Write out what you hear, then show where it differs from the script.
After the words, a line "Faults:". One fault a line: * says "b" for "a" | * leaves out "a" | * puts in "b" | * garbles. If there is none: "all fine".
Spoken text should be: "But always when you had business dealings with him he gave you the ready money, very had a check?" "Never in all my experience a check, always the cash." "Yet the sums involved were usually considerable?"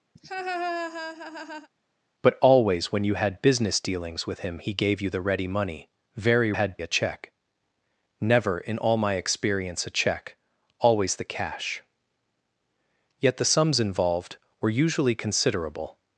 "But always when you had business dealings with him he gave you the ready money, very had a check?" "Never in all my experience a check, always the cash." "Yet the sums involved were usually considerable?"
Faults:
all fine